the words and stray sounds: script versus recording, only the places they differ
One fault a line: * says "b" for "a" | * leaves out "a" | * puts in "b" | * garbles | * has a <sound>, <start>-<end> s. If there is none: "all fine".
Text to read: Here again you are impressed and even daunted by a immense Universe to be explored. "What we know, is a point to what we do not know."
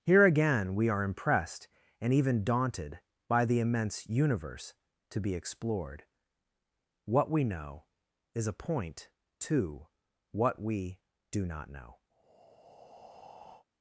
* says "we" for "you"
* says "the" for "a"
* has a breath, 12.1-13.7 s